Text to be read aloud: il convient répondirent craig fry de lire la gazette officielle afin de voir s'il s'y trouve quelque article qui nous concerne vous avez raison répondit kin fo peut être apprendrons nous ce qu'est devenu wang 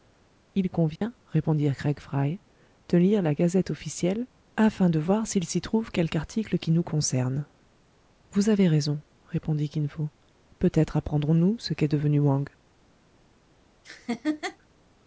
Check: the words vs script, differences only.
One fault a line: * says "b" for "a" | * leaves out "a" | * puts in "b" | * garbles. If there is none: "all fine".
all fine